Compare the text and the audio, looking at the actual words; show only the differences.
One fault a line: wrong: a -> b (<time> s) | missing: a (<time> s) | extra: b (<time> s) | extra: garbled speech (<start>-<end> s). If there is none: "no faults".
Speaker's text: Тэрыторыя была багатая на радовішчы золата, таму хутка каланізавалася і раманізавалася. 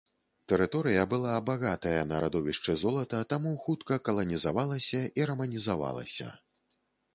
no faults